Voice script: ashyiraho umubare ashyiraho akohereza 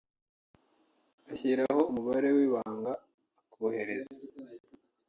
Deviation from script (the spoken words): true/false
true